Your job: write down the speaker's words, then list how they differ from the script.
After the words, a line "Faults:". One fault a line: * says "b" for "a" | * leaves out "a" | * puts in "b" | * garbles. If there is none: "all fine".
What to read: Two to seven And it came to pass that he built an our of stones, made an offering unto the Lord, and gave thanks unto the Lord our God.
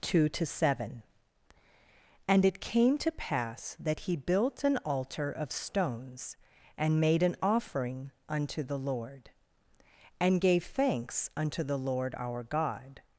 Two to seven And it came to pass that he built an altar of stones, and made an offering unto the Lord, and gave thanks unto the Lord our God.
Faults:
* says "altar" for "our"
* puts in "and"